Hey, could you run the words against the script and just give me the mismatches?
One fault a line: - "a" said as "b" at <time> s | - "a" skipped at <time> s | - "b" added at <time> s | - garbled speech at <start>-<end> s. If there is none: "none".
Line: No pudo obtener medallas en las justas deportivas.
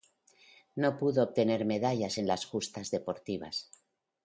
none